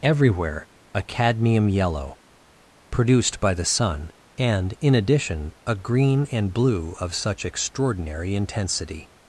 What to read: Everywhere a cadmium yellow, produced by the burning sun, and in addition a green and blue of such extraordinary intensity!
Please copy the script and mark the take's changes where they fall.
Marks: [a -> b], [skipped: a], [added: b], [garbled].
Everywhere a cadmium yellow, produced by the [skipped: burning] sun, and in addition a green and blue of such extraordinary intensity!